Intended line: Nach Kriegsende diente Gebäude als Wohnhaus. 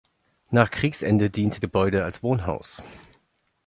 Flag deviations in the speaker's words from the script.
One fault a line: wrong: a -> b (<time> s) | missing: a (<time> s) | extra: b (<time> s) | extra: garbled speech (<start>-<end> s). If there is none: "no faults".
no faults